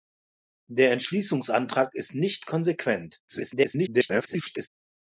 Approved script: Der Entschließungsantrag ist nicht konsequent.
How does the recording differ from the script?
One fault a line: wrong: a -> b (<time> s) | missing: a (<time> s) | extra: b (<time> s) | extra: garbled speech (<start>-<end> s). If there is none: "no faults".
extra: garbled speech (3.3-4.7 s)